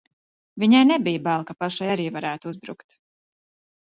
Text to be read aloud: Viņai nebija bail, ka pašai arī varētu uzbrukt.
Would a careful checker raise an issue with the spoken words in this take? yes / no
no